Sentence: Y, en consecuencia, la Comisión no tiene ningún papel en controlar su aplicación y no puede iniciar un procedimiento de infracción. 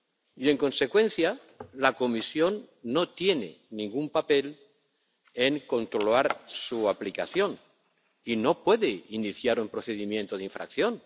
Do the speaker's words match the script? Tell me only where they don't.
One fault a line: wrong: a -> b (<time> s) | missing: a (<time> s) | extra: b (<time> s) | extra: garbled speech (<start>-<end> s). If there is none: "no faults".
no faults